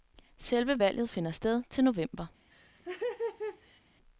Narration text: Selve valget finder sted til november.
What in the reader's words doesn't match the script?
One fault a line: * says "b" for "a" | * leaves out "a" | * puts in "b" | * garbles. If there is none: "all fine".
all fine